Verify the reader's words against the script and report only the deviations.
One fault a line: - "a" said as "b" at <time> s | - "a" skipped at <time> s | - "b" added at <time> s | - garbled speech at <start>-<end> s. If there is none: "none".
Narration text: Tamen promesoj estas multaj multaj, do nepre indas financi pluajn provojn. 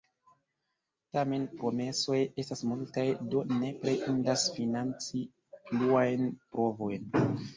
- "multaj" skipped at 3.0 s